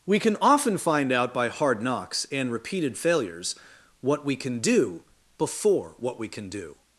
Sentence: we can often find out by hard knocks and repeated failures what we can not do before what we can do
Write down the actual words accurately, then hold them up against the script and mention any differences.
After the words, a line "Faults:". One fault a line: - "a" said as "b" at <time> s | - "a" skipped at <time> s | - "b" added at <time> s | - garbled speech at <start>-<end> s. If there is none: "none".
we can often find out by hard knocks and repeated failures what we can do before what we can do
Faults:
- "not" skipped at 4.6 s